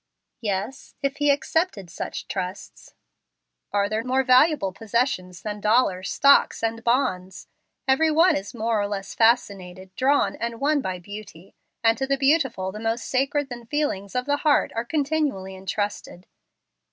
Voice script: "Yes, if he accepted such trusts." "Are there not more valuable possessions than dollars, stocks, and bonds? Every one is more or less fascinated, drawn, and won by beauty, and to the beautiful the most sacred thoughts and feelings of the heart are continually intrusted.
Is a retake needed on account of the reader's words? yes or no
yes